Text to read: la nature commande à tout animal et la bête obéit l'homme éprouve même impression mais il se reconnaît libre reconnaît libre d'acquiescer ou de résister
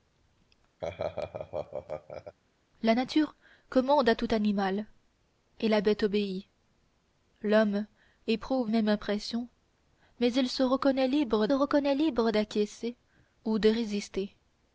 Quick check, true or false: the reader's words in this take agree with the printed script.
true